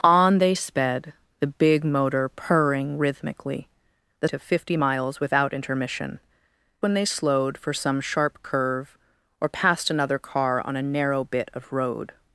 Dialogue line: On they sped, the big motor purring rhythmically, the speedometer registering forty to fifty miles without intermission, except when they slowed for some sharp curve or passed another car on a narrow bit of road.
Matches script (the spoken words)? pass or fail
fail